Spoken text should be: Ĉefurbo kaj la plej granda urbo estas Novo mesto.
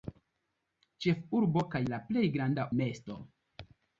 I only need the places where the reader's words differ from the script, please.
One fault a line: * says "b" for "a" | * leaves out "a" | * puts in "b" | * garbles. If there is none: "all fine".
* leaves out "urbo estas Novo"